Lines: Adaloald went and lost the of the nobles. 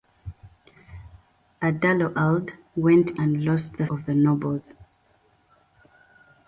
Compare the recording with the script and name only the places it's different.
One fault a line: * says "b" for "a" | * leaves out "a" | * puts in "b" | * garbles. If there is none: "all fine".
all fine